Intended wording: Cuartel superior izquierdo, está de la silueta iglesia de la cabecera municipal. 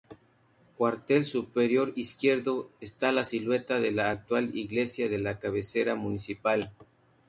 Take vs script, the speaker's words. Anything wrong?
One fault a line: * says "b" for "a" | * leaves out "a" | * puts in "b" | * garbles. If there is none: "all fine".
* puts in "la silueta"
* says "actual" for "silueta"